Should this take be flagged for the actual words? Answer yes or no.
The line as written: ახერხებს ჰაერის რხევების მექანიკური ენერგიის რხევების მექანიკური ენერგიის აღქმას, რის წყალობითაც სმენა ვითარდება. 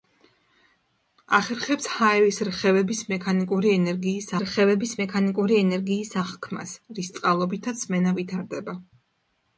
no